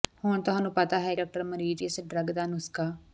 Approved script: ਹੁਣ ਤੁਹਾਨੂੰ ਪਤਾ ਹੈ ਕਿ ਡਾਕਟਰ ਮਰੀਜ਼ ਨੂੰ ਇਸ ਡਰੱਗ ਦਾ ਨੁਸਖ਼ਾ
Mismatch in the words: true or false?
true